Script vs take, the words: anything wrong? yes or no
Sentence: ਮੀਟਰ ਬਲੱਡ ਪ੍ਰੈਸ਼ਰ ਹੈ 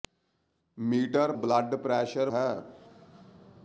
no